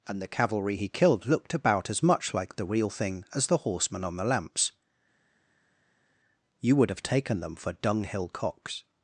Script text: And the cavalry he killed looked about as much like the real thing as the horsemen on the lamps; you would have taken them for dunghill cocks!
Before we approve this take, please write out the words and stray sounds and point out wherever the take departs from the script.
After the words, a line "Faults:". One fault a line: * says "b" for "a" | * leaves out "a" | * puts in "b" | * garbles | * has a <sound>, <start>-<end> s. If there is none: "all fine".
And the cavalry he killed looked about as much like the real thing as the horsemen on the lamps; you would have taken them for dunghill cocks!
Faults:
all fine